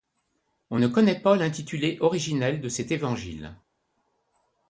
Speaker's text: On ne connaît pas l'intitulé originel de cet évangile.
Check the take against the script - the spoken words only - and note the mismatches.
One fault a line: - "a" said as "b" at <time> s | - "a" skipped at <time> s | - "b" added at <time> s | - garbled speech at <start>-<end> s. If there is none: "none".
none